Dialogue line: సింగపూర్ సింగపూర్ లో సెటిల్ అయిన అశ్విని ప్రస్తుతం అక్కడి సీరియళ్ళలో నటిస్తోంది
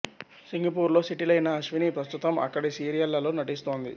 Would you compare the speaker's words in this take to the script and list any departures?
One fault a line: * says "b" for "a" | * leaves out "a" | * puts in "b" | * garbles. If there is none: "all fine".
* leaves out "సింగపూర్"